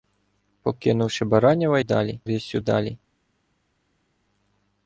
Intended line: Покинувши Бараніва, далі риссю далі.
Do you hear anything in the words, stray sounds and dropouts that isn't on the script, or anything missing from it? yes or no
no